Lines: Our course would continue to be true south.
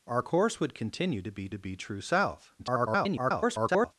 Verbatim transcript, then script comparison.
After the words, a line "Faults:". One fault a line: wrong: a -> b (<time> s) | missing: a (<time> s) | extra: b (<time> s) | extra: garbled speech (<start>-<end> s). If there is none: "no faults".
Our course would continue to be to be true south. [garbled]
Faults:
extra: to be (1.5 s)
extra: garbled speech (2.6-3.9 s)